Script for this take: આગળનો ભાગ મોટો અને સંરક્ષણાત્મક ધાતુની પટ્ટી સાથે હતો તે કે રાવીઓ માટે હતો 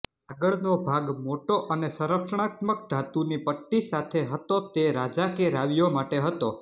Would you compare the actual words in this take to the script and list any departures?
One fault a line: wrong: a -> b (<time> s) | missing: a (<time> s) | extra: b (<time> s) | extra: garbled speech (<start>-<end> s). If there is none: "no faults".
extra: રાજા (5.0 s)